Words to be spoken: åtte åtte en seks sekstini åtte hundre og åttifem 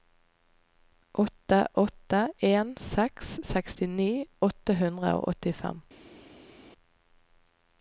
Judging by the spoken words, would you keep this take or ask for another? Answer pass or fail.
pass